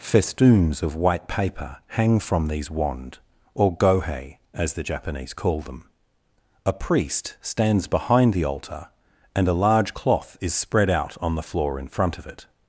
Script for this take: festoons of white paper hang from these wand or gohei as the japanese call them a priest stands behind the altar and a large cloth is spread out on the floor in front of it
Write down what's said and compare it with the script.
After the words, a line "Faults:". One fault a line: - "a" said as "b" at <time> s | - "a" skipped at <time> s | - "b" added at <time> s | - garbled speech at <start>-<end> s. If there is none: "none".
festoons of white paper hang from these wand or gohei as the japanese call them a priest stands behind the altar and a large cloth is spread out on the floor in front of it
Faults:
none